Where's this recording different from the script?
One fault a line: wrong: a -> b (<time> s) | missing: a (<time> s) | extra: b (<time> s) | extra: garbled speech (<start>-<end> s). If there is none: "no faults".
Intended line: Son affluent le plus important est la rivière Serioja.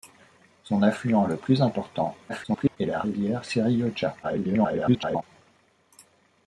extra: garbled speech (2.3-2.8 s)
extra: garbled speech (4.2-5.2 s)